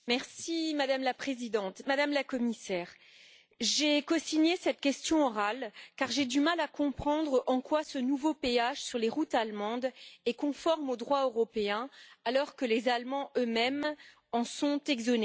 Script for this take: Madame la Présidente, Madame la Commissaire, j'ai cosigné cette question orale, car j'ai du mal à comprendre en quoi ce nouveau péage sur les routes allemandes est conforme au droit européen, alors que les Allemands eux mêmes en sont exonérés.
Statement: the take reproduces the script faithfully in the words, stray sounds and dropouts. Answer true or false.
true